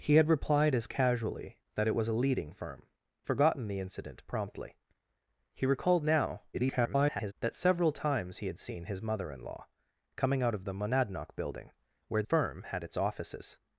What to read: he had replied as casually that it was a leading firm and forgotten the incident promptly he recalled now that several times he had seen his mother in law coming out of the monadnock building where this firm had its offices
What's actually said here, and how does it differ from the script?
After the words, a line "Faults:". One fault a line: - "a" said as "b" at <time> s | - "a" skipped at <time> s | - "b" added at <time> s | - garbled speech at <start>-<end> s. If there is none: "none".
he had replied as casually that it was a leading firm forgotten the incident promptly he recalled now [garbled] that several times he had seen his mother in law coming out of the monadnock building where firm had its offices
Faults:
- "and" skipped at 2.9 s
- garbled speech at 6.5-7.3 s
- "this" skipped at 12.2 s